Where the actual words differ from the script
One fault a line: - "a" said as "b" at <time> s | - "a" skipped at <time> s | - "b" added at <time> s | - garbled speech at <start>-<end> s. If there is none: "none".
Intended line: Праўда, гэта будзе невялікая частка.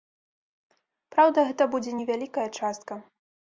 none